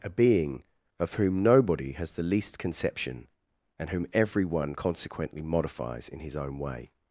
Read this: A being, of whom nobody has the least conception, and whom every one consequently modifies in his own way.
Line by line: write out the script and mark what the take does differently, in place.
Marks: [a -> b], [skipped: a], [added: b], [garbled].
A being, of whom nobody has the least conception, and whom every one consequently modifies in his own way.